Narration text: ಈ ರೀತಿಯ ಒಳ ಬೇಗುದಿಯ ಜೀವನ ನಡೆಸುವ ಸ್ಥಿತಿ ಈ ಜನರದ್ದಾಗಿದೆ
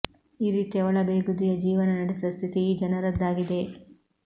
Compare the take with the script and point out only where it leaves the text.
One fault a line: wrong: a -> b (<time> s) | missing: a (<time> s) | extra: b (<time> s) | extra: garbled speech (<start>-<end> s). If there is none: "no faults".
no faults